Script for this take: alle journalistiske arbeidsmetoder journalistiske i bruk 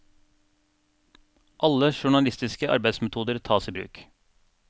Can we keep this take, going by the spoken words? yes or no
no